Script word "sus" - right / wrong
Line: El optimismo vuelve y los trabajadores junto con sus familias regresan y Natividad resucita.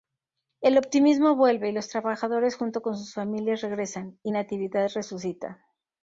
right